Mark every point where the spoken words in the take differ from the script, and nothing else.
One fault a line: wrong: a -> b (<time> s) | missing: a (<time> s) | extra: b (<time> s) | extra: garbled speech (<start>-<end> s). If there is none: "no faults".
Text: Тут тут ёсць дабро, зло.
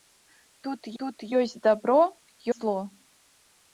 no faults